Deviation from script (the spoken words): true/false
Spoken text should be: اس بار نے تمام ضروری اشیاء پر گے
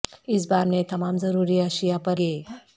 false